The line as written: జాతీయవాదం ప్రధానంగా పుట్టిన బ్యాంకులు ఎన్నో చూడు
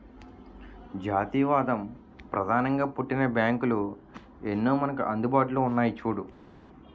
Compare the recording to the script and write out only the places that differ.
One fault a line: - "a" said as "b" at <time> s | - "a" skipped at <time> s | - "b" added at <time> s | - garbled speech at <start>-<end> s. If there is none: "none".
- "మనకు అందుబాటులో ఉన్నాయి" added at 4.8 s